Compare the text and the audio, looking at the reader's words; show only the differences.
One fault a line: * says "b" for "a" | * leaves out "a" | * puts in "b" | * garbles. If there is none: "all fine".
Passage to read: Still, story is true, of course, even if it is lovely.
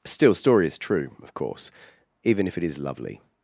all fine